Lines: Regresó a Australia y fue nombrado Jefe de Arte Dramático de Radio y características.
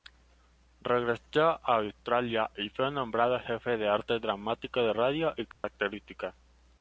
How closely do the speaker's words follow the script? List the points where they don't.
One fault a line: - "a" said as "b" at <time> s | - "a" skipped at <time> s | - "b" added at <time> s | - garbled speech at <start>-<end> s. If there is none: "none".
none